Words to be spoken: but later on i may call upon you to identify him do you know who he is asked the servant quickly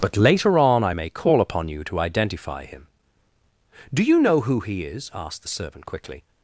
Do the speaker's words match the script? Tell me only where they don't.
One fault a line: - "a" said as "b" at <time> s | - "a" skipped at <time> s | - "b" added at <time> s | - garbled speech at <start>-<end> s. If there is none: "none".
none